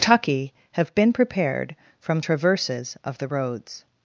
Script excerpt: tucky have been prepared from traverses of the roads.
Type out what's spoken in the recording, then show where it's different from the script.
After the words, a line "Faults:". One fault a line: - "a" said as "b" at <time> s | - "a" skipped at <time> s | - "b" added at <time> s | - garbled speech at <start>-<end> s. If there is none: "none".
tucky have been prepared from traverses of the roads.
Faults:
none